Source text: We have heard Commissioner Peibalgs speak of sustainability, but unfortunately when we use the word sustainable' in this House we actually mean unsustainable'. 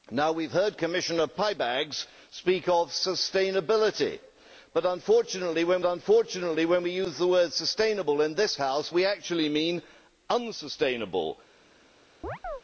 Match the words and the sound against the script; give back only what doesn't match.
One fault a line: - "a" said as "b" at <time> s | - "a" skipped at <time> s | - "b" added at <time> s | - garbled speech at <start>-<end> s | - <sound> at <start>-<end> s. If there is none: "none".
- "unfortunately when" added at 5.8 s
- chirp at 12.2-12.6 s